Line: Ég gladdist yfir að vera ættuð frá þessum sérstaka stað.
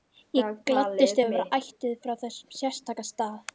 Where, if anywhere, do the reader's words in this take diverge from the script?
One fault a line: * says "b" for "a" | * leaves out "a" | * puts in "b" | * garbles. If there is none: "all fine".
all fine